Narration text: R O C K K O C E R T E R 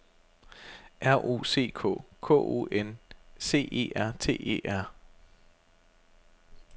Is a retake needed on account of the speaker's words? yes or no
yes